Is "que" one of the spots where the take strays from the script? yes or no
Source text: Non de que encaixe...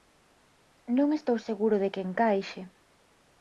no